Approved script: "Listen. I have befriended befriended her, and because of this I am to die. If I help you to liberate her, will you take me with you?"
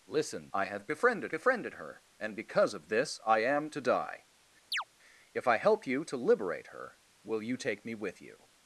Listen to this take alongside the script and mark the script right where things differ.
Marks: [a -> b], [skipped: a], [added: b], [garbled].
"Listen. I have befriended befriended her, and because of this I am to die. If I help you to liberate her, will you take me with you?"